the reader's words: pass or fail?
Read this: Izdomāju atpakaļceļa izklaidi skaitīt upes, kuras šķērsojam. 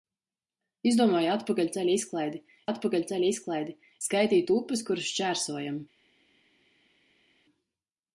fail